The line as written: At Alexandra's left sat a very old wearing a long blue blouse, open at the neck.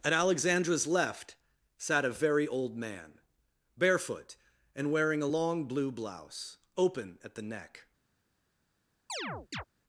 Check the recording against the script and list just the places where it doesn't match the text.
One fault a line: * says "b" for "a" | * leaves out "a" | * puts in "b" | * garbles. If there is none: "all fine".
* puts in "man barefoot and"